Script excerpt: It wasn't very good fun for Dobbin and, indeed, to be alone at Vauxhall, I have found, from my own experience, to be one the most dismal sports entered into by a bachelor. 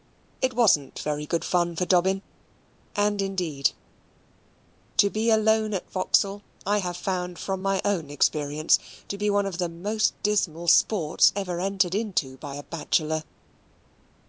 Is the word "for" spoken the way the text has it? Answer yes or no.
yes